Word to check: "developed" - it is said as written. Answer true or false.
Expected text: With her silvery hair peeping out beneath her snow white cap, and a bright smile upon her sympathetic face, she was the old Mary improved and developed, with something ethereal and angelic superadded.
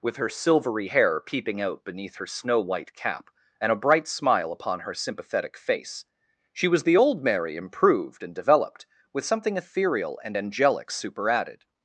true